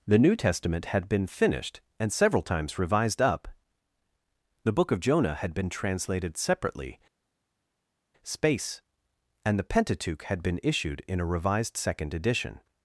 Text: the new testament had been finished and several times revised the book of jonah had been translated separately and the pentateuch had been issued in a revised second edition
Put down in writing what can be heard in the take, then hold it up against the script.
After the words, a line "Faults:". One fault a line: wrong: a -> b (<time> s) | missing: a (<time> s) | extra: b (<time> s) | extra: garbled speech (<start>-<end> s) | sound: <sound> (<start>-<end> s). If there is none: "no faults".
the new testament had been finished and several times revised up the book of jonah had been translated separately space and the pentateuch had been issued in a revised second edition
Faults:
extra: up (3.2 s)
extra: space (8.2 s)